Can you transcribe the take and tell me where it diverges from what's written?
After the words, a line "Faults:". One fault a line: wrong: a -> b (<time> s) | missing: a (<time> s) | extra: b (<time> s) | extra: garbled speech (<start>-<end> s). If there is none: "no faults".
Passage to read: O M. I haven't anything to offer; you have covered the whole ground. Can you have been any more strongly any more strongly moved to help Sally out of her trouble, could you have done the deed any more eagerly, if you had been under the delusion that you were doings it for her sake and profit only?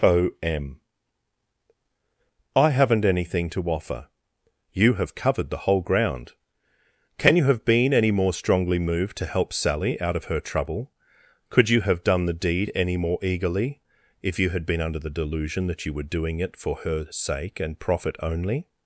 O M. I haven't anything to offer; you have covered the whole ground. Can you have been any more strongly moved to help Sally out of her trouble, could you have done the deed any more eagerly, if you had been under the delusion that you were doing it for her sake and profit only?
Faults:
missing: any more strongly (8.8 s)
wrong: doings -> doing (16.2 s)